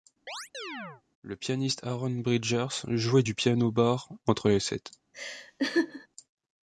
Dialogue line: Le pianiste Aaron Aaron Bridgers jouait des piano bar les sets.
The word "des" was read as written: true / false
false